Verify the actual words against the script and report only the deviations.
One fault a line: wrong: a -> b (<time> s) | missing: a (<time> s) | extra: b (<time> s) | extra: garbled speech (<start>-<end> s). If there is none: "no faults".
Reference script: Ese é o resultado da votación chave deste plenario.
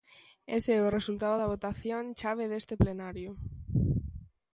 no faults